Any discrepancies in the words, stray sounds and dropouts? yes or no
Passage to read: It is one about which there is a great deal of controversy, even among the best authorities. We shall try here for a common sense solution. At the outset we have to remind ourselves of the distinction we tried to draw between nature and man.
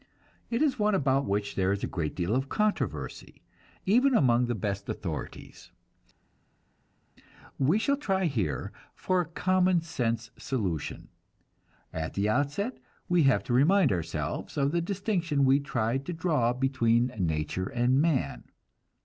no